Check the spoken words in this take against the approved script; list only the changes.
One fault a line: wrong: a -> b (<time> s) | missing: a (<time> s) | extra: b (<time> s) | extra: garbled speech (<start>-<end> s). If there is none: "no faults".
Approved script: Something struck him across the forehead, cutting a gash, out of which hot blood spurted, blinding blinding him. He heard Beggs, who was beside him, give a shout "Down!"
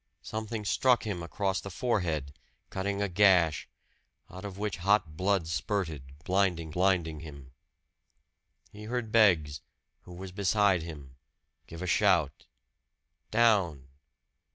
no faults